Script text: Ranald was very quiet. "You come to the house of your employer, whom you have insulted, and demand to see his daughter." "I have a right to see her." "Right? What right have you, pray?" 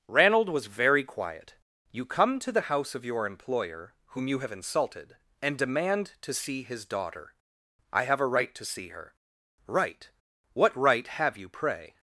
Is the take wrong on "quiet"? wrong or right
right